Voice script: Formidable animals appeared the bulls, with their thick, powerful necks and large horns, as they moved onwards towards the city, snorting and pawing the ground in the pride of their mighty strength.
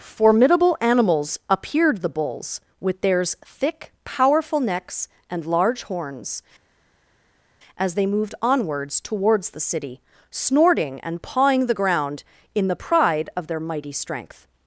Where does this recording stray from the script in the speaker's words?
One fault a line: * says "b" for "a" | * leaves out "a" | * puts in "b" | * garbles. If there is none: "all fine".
* says "theirs" for "their"